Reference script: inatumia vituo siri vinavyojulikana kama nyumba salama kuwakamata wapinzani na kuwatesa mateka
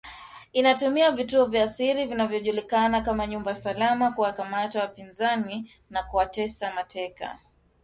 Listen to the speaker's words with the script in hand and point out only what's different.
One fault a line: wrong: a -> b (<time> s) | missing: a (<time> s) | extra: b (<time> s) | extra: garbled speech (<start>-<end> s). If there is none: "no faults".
extra: vya (1.4 s)